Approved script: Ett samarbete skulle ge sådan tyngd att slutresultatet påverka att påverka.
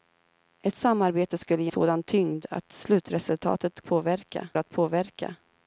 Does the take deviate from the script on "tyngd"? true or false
false